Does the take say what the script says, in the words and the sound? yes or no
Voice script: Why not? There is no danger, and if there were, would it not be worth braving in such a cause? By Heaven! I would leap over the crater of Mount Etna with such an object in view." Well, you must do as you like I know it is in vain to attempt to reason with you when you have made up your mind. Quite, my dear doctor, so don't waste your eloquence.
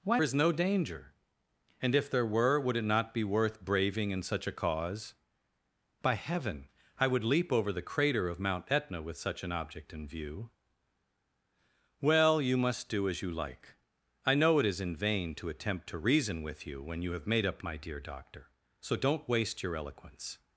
no